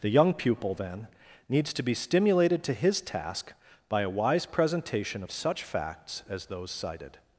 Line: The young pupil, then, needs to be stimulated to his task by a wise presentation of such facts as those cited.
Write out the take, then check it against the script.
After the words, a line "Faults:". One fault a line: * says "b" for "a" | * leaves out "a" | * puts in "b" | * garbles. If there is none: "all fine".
The young pupil, then, needs to be stimulated to his task by a wise presentation of such facts as those cited.
Faults:
all fine